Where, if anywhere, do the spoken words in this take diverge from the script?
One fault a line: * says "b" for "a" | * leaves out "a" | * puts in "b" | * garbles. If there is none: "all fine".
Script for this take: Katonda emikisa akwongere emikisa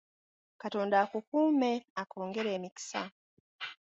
* says "akukuume" for "emikisa"